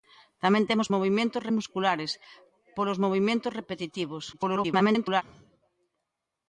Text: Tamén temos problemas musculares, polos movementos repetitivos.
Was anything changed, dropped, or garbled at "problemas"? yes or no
yes